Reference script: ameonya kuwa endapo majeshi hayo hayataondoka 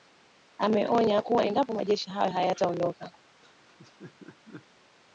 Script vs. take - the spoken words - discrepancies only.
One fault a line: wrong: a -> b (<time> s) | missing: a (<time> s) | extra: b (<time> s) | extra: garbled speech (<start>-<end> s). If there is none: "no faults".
no faults